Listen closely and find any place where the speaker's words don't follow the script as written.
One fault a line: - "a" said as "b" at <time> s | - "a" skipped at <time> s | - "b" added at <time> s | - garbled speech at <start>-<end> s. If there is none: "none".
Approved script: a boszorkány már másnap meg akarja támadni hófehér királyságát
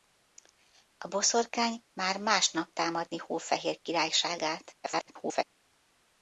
- "meg akarja" skipped at 2.7 s
- garbled speech at 4.8-5.4 s